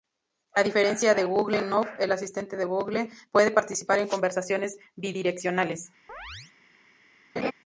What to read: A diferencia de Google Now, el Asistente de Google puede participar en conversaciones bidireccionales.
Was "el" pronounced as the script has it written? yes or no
yes